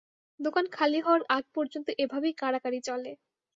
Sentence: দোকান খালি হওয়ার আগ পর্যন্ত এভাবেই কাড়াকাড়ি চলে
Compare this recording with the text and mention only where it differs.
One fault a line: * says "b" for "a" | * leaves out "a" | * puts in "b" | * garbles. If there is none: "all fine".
all fine